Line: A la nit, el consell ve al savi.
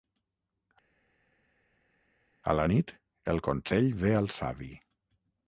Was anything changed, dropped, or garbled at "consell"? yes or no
no